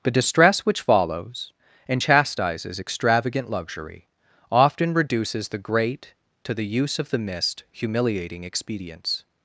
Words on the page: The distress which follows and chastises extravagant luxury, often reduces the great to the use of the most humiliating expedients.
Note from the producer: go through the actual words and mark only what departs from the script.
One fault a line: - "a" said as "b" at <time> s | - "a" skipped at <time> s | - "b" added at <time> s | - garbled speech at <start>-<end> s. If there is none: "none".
- "most" said as "mist" at 7.2 s